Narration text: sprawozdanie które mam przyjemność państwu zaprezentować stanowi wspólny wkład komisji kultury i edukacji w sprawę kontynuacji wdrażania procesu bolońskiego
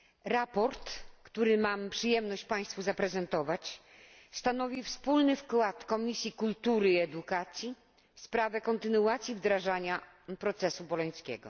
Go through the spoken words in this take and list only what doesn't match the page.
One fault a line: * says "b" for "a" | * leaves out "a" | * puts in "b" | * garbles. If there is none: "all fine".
all fine